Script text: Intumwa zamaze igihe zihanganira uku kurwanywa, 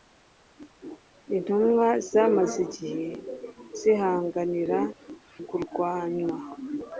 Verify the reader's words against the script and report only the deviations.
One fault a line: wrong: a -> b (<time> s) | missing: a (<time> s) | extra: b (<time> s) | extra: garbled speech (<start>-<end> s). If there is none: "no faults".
missing: uku (4.8 s)